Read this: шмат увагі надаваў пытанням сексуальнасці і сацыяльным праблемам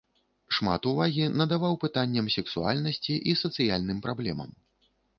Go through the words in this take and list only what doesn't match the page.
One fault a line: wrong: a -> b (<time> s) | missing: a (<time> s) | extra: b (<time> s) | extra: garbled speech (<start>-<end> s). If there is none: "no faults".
no faults